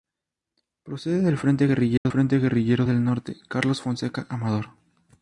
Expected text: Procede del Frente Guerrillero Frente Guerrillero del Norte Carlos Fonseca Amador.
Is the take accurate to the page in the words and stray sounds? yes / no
no